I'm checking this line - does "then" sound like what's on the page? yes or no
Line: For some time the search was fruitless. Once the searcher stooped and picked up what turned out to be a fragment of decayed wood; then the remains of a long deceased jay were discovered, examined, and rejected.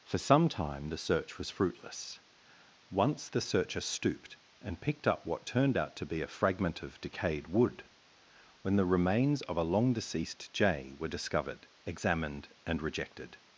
no